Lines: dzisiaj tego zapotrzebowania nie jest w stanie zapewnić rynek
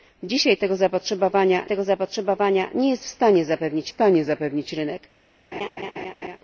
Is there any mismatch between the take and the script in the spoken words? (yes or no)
yes